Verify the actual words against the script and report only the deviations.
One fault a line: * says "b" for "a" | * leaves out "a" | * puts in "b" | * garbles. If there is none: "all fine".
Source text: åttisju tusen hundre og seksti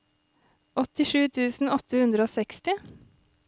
* puts in "åtte"